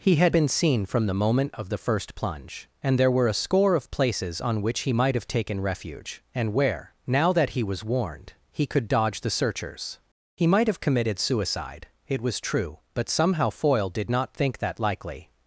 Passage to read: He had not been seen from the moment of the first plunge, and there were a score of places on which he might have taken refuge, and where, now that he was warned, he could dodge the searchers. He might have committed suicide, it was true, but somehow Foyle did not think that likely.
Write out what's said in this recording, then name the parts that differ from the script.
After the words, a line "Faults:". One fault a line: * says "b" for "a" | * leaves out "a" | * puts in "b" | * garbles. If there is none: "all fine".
He had been seen from the moment of the first plunge, and there were a score of places on which he might have taken refuge, and where, now that he was warned, he could dodge the searchers. He might have committed suicide, it was true, but somehow Foyle did not think that likely.
Faults:
* leaves out "not"